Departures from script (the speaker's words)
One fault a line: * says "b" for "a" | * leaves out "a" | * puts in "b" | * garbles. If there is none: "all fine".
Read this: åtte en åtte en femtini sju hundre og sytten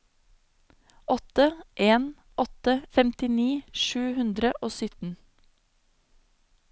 * leaves out "en"